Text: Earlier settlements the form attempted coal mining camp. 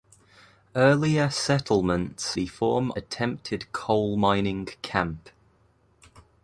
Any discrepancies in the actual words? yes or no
no